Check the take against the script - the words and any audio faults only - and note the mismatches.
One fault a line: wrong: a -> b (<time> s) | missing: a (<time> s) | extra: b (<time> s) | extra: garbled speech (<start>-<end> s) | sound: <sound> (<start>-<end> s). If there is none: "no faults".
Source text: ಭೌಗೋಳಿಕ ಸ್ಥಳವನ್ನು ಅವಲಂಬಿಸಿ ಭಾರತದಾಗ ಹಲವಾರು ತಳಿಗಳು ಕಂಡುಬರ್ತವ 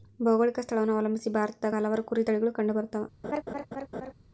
extra: ಕುರಿ (2.0 s)
sound: laugh (3.2-4.1 s)